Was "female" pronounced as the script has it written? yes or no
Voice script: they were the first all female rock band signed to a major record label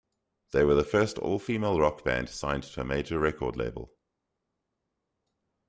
yes